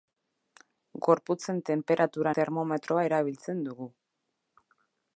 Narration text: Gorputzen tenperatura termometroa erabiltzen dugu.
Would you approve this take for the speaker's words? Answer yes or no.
yes